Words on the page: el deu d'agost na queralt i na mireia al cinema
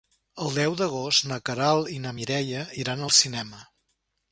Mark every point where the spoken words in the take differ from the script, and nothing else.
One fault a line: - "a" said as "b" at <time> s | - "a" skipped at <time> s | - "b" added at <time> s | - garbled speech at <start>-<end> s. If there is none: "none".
- "iran" added at 2.8 s